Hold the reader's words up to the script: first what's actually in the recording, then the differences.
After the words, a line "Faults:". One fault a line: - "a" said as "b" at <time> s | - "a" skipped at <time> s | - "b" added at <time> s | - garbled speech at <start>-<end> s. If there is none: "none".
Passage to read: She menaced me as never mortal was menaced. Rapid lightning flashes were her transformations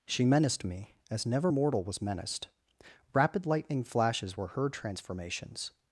She menaced me as never mortal was menaced. Rapid lightning flashes were her transformations
Faults:
none